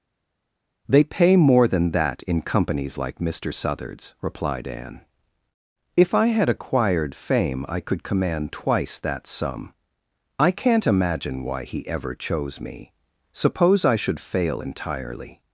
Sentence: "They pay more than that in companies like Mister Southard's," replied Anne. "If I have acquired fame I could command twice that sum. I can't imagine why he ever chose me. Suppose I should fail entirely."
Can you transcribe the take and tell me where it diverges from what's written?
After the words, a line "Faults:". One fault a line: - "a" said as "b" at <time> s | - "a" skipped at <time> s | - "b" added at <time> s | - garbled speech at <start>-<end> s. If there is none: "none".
"They pay more than that in companies like Mister Southard's," replied Anne. "If I had acquired fame I could command twice that sum. I can't imagine why he ever chose me. Suppose I should fail entirely."
Faults:
- "have" said as "had" at 6.3 s